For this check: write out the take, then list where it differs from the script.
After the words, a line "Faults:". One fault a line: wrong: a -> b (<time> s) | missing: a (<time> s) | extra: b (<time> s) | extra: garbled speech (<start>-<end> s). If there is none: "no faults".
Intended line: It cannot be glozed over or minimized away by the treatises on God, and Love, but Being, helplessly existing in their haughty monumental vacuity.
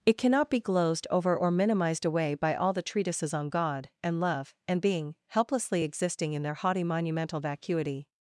It cannot be glozed over or minimized away by all the treatises on God, and Love, and Being, helplessly existing in their haughty monumental vacuity.
Faults:
extra: all (2.5 s)
wrong: but -> and (4.7 s)